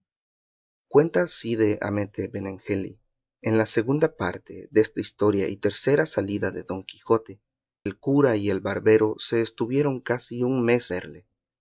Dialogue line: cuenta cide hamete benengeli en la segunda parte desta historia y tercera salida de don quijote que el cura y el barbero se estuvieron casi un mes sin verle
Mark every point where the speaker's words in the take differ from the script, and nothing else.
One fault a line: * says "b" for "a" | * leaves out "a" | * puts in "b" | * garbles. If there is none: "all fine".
* leaves out "que"
* leaves out "sin"